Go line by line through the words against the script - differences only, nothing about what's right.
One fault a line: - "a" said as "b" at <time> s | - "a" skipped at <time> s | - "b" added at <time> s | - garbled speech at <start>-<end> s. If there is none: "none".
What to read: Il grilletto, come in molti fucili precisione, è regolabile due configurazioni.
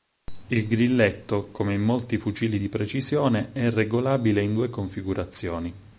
- "di" added at 2.5 s
- "in" added at 4.4 s